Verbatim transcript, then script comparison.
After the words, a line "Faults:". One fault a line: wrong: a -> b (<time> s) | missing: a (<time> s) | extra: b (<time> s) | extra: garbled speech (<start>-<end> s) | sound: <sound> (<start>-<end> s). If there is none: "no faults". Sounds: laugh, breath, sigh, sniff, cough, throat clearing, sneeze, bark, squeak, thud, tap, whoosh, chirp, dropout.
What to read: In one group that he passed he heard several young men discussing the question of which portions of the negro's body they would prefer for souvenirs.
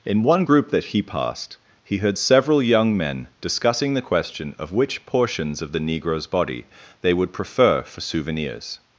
In one group that he passed he heard several young men discussing the question of which portions of the negro's body they would prefer for souvenirs.
Faults:
no faults